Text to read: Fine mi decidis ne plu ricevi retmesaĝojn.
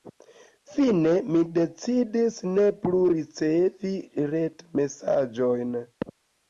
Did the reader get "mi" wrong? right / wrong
right